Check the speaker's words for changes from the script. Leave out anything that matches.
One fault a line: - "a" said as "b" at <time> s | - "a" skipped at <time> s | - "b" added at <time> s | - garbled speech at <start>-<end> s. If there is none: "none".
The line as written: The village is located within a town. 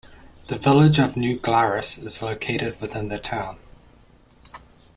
- "of New Glarus" added at 1.0 s
- "a" said as "the" at 3.1 s